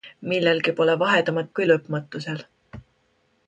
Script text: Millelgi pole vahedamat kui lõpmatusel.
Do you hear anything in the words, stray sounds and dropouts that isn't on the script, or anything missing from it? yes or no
no